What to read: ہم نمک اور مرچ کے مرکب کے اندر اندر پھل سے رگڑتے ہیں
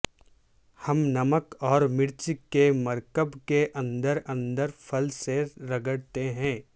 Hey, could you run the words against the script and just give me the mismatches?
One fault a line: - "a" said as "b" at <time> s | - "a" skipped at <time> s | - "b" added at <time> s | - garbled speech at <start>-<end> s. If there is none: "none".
none